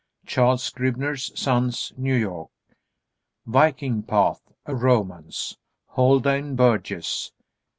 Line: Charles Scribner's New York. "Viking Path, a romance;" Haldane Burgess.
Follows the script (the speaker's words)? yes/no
no